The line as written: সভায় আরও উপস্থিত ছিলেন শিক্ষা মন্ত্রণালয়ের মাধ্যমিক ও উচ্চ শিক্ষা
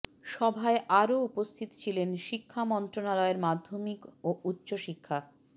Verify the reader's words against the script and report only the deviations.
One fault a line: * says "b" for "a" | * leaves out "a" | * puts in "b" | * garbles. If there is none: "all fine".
all fine